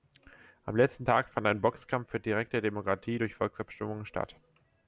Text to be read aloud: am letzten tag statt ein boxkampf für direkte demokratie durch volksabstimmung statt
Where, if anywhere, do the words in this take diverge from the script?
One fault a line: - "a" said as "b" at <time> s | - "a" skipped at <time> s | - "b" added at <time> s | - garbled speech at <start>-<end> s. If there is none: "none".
- "statt" said as "fand" at 1.3 s